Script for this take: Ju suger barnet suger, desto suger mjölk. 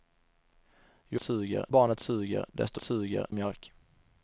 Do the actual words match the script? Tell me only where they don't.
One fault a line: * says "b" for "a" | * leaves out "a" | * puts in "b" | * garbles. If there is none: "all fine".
all fine